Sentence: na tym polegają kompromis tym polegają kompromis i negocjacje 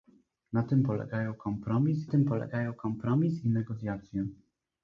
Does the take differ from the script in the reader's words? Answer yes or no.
no